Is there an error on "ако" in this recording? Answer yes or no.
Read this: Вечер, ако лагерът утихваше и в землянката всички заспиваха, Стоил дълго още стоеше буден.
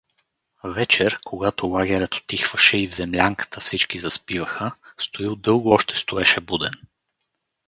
yes